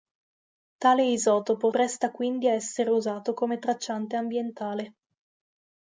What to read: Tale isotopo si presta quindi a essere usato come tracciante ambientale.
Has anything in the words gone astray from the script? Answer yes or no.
yes